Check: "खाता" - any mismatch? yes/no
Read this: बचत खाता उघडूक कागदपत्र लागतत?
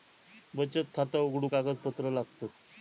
no